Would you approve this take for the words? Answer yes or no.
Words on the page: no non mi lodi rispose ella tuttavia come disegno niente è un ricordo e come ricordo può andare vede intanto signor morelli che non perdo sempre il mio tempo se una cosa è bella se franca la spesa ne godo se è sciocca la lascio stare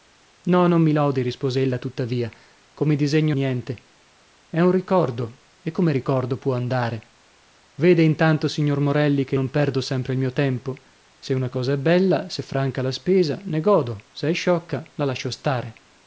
yes